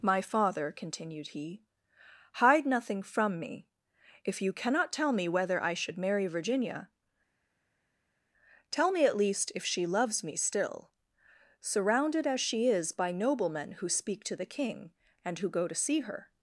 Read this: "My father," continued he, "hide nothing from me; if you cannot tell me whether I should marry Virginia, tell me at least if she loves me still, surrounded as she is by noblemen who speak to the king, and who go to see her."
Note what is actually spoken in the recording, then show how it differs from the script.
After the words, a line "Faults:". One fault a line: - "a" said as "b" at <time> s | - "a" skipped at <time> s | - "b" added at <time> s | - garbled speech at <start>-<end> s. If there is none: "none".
"My father," continued he, "hide nothing from me; if you cannot tell me whether I should marry Virginia, tell me at least if she loves me still, surrounded as she is by noblemen who speak to the king, and who go to see her."
Faults:
none